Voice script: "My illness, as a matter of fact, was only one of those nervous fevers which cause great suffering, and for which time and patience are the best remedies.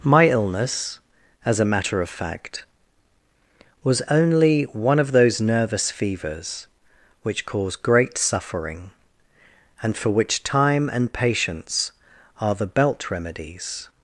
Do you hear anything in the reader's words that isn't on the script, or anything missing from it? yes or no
yes